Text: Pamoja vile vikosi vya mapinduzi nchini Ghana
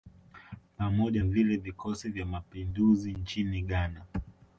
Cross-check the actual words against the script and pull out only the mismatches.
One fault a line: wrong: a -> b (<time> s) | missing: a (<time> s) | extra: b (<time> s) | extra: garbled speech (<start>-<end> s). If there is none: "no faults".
no faults